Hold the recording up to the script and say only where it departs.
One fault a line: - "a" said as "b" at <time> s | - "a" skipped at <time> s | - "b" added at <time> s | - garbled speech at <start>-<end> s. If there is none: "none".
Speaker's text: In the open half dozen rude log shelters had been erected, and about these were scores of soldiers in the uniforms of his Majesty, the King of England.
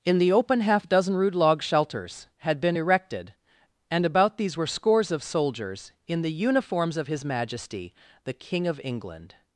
none